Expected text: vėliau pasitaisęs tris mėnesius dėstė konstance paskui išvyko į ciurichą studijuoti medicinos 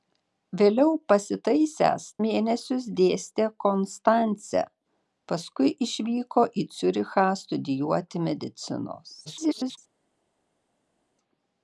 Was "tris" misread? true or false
true